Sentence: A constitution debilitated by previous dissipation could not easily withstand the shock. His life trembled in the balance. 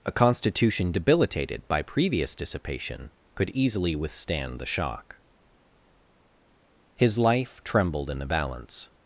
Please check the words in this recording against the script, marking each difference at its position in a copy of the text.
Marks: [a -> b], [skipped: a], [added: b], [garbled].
A constitution debilitated by previous dissipation could [skipped: not] easily withstand the shock. His life trembled in the balance.